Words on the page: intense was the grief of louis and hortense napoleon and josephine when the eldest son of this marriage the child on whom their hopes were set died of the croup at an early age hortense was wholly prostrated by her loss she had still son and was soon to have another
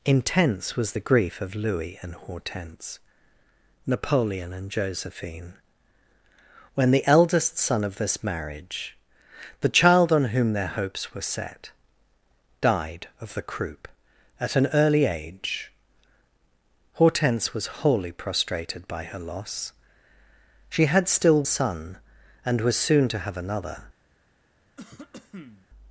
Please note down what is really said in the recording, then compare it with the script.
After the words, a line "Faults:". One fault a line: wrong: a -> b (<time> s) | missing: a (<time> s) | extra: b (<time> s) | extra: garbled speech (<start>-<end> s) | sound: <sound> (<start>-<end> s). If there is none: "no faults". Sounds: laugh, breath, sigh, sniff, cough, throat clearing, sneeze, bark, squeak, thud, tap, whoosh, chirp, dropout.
intense was the grief of louis and hortense napoleon and josephine when the eldest son of this marriage the child on whom their hopes were set died of the croup at an early age hortense was wholly prostrated by her loss she had still son and was soon to have another
Faults:
sound: cough (24.8-25.7 s)